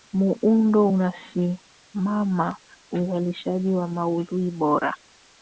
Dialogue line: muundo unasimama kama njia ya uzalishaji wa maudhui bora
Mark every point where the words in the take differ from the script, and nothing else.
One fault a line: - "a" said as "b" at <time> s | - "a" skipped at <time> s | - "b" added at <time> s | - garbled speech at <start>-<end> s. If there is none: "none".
- "kama njia ya" skipped at 2.6 s